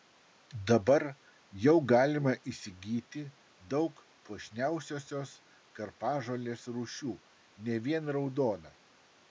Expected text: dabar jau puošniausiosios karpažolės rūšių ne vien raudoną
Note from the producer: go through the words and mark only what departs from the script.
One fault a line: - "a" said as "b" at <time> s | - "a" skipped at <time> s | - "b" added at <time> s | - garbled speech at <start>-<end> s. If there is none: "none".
- "galima įsigyti daug" added at 1.9 s